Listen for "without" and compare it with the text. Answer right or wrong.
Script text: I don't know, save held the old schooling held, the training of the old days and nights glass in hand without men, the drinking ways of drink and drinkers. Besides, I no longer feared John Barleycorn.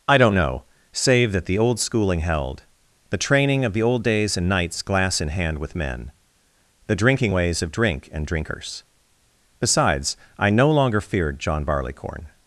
wrong